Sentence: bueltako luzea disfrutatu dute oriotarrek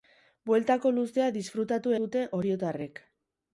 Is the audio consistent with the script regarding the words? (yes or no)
yes